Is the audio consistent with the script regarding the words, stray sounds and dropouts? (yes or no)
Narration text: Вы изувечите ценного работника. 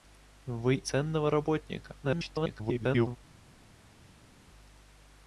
no